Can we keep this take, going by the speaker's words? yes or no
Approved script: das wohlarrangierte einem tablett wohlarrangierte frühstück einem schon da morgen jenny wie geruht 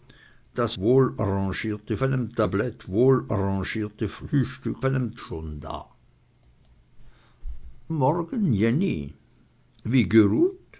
yes